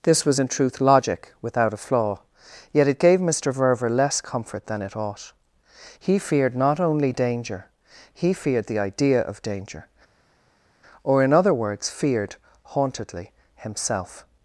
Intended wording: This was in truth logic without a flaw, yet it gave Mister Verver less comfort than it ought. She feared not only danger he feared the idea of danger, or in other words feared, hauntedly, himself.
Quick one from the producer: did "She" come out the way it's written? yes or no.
no